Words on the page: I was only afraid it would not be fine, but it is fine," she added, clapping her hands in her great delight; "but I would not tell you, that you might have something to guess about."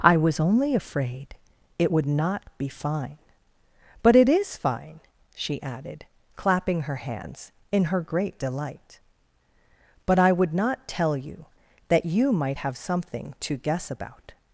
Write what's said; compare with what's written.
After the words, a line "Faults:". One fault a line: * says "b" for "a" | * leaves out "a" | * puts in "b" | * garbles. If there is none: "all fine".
I was only afraid it would not be fine, but it is fine," she added, clapping her hands in her great delight; "but I would not tell you, that you might have something to guess about."
Faults:
all fine